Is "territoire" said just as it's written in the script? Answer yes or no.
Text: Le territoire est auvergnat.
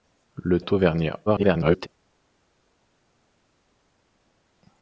no